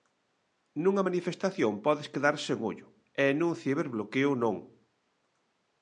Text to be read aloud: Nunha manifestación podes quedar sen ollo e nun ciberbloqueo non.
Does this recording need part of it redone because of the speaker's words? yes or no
no